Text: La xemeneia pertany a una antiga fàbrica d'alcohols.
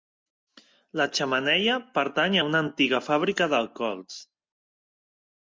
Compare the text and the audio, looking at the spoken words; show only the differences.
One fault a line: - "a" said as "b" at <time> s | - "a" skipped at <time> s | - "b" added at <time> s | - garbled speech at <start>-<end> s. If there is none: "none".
none